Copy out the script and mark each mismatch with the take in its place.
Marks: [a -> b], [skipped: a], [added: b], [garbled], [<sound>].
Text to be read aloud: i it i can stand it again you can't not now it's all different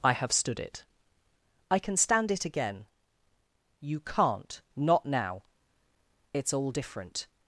i [added: have stood] it i can stand it again you can't not now it's all different